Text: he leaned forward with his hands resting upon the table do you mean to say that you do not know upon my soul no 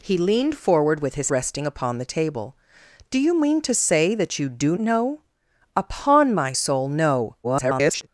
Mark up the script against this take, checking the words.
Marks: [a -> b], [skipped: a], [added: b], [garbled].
he leaned forward with his [skipped: hands] resting upon the table do you mean to say that you do [skipped: not] know upon my soul no [garbled]